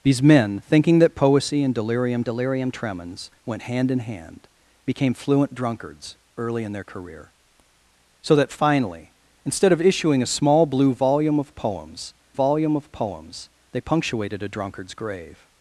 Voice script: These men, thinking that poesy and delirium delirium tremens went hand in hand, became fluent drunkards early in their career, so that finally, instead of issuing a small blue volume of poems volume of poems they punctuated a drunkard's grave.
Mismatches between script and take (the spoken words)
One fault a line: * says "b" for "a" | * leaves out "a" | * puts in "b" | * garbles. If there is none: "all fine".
all fine